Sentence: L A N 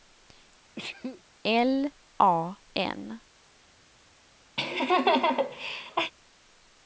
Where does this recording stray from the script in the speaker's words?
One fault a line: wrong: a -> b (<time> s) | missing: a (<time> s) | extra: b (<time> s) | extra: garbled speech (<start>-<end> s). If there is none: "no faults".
no faults